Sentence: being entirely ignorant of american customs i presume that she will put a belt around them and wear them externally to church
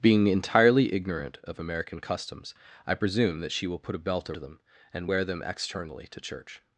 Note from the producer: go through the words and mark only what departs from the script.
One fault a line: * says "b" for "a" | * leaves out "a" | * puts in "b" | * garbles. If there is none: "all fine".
* leaves out "around"